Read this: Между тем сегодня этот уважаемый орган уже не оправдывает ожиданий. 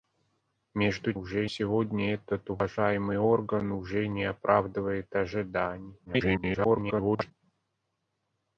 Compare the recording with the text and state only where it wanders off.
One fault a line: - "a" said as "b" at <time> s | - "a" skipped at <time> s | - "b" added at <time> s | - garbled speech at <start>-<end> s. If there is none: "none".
- "тем" said as "уже" at 1.1 s
- garbled speech at 6.1-7.3 s